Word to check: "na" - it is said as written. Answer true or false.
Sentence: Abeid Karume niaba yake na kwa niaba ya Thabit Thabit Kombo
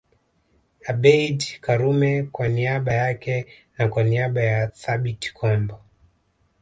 true